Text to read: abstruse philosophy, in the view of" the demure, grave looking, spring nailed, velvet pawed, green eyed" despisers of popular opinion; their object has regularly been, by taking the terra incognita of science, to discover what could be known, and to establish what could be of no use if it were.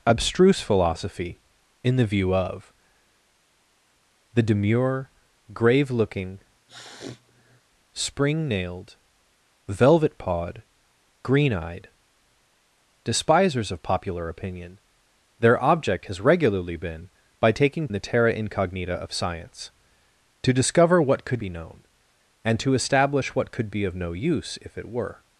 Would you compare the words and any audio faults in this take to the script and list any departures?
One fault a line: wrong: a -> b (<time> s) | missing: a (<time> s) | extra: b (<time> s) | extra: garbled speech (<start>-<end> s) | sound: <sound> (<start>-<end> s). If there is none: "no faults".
sound: sniff (6.7-7.6 s)